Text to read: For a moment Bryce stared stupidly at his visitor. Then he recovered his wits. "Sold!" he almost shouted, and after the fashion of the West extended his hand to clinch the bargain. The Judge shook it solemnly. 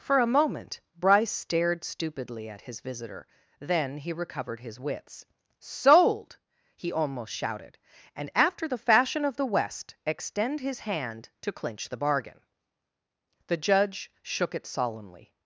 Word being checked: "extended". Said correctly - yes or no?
no